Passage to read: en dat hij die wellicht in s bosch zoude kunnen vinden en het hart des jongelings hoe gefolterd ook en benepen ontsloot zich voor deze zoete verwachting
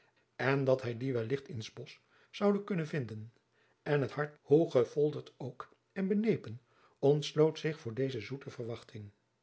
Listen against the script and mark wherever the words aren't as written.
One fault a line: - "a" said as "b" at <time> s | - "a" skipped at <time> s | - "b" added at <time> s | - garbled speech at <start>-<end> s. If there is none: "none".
- "des jongelings" skipped at 4.4 s